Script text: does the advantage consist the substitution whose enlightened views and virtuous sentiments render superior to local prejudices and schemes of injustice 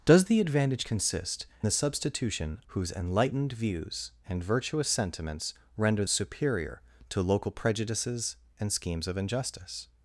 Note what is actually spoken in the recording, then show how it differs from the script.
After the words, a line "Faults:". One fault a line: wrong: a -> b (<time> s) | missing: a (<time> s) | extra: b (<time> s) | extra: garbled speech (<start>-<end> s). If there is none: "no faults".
does the advantage consist the substitution whose enlightened views and virtuous sentiments render superior to local prejudices and schemes of injustice
Faults:
no faults